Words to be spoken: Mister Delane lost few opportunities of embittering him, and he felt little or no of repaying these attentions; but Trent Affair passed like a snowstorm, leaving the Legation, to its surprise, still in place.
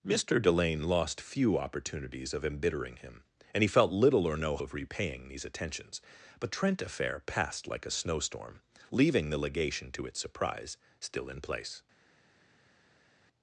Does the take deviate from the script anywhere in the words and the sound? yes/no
no